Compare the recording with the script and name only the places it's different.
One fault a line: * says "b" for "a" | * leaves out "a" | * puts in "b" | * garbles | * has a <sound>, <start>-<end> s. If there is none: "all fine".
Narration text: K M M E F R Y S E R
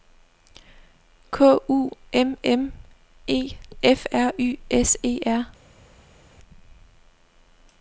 * puts in "U"